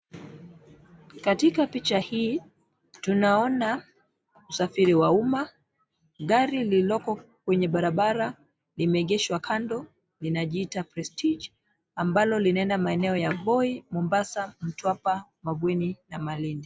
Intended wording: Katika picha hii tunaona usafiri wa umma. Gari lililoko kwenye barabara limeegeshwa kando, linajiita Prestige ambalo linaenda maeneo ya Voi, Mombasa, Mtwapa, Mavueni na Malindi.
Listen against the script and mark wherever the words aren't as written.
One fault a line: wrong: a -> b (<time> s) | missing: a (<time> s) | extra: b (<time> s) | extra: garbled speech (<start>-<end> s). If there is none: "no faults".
no faults